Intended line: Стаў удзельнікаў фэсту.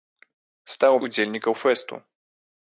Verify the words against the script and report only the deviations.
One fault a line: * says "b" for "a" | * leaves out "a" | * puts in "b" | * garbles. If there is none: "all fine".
all fine